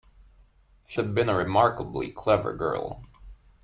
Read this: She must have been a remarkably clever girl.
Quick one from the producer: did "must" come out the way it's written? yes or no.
no